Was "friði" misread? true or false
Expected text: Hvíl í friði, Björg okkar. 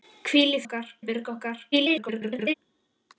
true